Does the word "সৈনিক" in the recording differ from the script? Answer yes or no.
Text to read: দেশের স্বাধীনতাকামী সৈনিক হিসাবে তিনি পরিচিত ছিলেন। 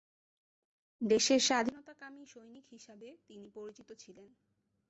no